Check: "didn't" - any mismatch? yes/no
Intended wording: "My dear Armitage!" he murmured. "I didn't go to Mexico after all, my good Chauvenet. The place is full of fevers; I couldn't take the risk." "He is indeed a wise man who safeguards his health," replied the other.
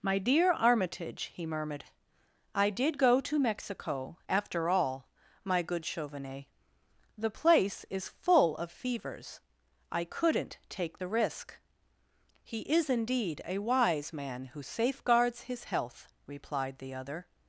yes